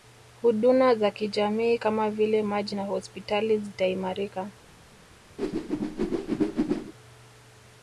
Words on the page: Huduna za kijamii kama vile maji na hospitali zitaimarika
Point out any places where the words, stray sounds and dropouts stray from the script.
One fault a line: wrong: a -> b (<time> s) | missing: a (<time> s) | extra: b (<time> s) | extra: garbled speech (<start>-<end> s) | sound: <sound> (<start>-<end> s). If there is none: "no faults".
sound: whoosh (5.4-6.9 s)